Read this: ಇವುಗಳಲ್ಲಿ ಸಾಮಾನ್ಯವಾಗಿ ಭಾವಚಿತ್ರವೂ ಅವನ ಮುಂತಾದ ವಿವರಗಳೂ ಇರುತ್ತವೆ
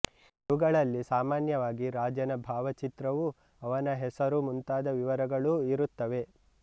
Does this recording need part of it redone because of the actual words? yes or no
yes